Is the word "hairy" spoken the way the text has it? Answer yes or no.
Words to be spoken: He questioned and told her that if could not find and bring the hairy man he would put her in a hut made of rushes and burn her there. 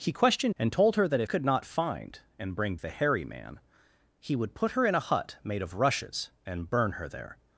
yes